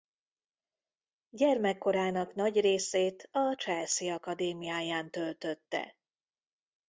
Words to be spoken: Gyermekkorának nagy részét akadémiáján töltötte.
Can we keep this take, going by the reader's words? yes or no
no